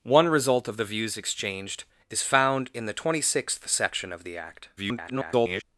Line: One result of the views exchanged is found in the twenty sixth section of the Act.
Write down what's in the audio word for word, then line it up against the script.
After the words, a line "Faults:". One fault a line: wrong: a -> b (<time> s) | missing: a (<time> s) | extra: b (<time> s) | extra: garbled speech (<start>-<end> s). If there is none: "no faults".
One result of the views exchanged is found in the twenty sixth section of the Act. [garbled]
Faults:
extra: garbled speech (4.8-5.6 s)